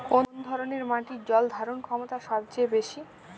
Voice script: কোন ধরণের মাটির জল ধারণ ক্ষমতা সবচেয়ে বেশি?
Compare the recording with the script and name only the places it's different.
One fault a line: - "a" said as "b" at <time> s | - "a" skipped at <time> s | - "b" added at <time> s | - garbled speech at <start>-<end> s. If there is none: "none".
none